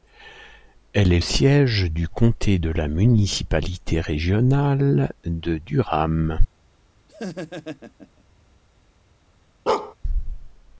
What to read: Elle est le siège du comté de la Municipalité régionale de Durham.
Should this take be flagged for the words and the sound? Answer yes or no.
yes